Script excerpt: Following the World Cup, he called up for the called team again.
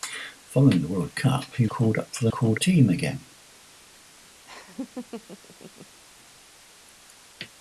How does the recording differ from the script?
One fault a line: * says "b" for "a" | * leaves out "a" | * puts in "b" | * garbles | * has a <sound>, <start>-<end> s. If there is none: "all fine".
* has a laugh, 4.4-6.0 s